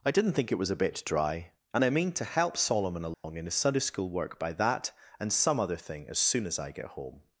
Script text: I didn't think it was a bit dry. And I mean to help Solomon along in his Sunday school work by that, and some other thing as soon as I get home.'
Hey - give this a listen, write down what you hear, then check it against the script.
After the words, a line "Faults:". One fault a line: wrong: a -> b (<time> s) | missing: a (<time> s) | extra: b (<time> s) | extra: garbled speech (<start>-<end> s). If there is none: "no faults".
I didn't think it was a bit dry. And I mean to help Solomon along in his Sunday school work by that, and some other thing as soon as I get home.'
Faults:
no faults